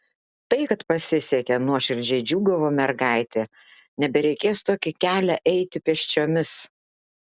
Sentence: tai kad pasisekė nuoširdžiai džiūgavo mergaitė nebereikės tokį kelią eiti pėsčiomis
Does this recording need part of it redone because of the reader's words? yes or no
no